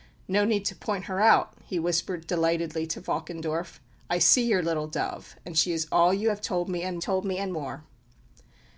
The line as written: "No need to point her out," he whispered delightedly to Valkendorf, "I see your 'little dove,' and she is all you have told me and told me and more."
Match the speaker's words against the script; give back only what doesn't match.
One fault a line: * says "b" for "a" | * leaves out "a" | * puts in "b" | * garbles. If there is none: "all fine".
all fine